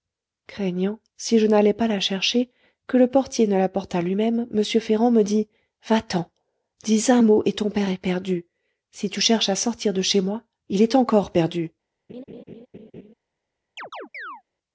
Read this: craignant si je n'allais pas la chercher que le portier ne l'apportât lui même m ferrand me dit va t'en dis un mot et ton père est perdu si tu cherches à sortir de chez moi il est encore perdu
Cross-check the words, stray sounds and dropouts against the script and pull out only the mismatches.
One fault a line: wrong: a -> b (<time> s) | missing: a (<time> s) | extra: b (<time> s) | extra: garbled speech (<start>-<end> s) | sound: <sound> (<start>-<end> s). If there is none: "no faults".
sound: laugh (12.1-13.1 s)
sound: chirp (13.8-14.4 s)